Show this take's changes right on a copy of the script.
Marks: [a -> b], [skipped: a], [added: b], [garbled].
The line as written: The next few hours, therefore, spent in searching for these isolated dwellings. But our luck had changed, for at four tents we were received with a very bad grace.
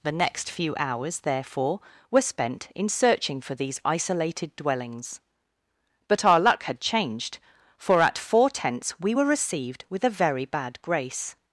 The next few hours, therefore, [added: were] spent in searching for these isolated dwellings. But our luck had changed, for at four tents we were received with a very bad grace.